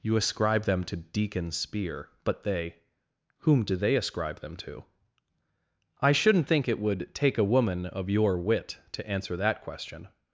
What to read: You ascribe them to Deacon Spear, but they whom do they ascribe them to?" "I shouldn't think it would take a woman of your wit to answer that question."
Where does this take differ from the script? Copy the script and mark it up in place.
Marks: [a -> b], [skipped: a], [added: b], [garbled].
You ascribe them to Deacon Spear, but they whom do they ascribe them to?" "I shouldn't think it would take a woman of your wit to answer that question."